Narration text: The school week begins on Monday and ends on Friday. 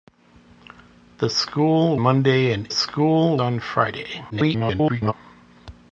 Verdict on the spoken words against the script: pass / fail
fail